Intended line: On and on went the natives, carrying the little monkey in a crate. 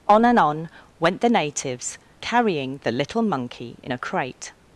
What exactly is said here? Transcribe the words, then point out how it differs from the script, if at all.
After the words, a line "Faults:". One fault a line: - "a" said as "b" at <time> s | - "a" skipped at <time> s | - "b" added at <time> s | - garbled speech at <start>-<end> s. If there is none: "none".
On and on went the natives, carrying the little monkey in a crate.
Faults:
none